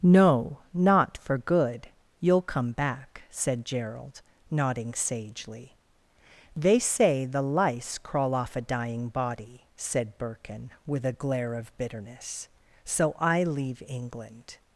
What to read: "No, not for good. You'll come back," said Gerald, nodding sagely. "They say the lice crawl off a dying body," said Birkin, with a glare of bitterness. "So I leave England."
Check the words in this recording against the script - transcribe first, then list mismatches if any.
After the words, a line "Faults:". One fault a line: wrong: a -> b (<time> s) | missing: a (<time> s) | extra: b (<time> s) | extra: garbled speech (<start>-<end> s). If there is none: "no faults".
"No, not for good. You'll come back," said Gerald, nodding sagely. "They say the lice crawl off a dying body," said Birkin, with a glare of bitterness. "So I leave England."
Faults:
no faults